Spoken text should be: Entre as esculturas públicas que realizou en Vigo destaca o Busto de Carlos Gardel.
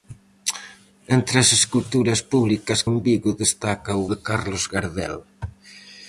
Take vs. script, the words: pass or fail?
fail